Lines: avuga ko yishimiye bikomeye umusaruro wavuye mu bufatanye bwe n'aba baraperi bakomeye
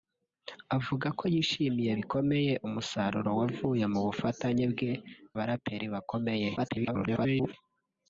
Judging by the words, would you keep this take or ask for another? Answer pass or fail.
fail